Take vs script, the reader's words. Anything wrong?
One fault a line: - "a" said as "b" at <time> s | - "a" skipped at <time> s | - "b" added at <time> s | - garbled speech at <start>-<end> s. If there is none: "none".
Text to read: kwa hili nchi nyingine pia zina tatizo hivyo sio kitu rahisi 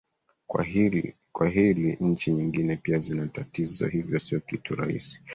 none